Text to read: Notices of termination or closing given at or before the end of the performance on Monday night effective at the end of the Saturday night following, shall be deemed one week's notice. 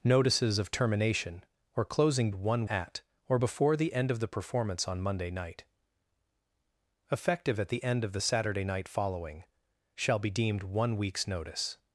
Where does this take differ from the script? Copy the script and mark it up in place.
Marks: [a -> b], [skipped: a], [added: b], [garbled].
Notices of termination or closing [given -> one] at or before the end of the performance on Monday night effective at the end of the Saturday night following, shall be deemed one week's notice.